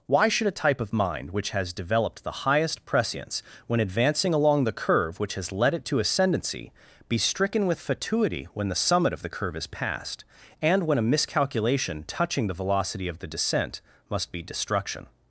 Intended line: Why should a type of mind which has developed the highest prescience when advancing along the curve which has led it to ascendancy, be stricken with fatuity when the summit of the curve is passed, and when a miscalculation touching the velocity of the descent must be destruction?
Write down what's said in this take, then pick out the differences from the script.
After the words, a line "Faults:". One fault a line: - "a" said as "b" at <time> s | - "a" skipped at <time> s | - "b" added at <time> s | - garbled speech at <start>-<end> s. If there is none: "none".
Why should a type of mind which has developed the highest prescience when advancing along the curve which has led it to ascendancy, be stricken with fatuity when the summit of the curve is passed, and when a miscalculation touching the velocity of the descent must be destruction?
Faults:
none